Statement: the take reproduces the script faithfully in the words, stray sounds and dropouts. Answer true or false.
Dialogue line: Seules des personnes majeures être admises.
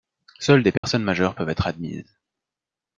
false